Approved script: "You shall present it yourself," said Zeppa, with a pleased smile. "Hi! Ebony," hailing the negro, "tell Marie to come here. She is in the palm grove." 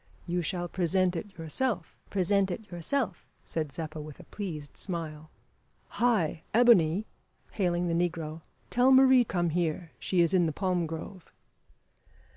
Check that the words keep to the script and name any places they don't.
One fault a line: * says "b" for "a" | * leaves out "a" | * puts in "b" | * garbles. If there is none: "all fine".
* puts in "present it yourself"
* leaves out "to"